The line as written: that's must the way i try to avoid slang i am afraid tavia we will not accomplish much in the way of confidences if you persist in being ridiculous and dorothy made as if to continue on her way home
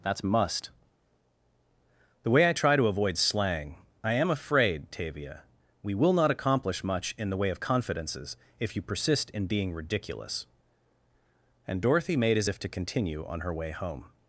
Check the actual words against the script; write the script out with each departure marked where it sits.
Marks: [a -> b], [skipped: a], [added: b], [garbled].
that's must the way i try to avoid slang i am afraid tavia we will not accomplish much in the way of confidences if you persist in being ridiculous and dorothy made as if to continue on her way home